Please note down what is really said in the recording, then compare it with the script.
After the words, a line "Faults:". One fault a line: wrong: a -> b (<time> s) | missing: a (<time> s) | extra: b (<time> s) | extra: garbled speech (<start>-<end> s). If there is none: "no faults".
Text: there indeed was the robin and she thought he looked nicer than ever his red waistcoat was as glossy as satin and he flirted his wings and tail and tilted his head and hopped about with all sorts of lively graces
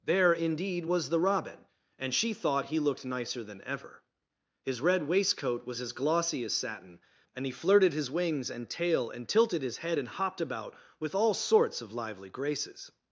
there indeed was the robin and she thought he looked nicer than ever his red waistcoat was as glossy as satin and he flirted his wings and tail and tilted his head and hopped about with all sorts of lively graces
Faults:
no faults